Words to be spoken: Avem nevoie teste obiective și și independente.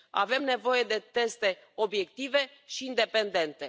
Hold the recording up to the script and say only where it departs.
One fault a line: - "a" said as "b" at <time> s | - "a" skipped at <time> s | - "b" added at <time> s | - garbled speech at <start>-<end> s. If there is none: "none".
- "de" added at 0.8 s
- "și" skipped at 2.9 s